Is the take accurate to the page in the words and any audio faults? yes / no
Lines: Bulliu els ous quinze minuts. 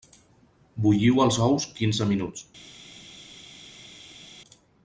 yes